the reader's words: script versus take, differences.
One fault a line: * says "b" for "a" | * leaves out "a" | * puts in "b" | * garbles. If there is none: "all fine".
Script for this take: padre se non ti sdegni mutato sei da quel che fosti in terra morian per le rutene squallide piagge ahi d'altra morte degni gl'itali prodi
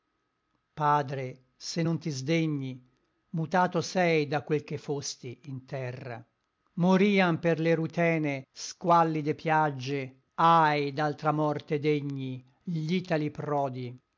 all fine